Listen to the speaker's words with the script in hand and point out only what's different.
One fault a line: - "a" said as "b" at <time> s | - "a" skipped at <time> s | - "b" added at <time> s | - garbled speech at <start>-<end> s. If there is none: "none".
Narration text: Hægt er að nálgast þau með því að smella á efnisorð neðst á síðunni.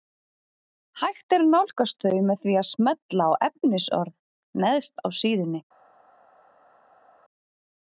none